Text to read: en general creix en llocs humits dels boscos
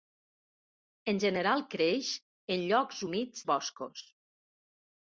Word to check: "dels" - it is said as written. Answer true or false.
false